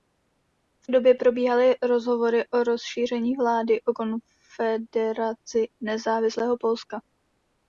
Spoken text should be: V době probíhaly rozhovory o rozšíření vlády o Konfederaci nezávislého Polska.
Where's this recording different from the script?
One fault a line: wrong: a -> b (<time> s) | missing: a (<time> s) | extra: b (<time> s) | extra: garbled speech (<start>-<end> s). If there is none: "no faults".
no faults